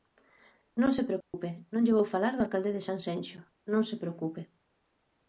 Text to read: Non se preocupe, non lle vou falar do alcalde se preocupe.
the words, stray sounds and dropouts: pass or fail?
fail